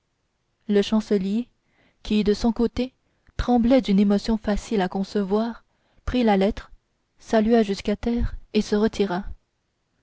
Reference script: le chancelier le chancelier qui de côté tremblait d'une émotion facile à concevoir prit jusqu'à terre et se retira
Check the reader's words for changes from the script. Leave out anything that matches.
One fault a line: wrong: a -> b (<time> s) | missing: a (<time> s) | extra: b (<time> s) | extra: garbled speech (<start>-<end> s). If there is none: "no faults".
missing: le chancelier (1.5 s)
extra: son (2.3 s)
extra: la lettre salua (6.2 s)